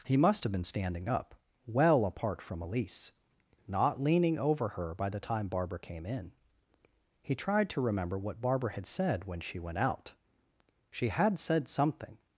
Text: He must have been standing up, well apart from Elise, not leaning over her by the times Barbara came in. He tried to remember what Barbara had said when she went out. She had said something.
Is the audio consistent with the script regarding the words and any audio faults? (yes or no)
no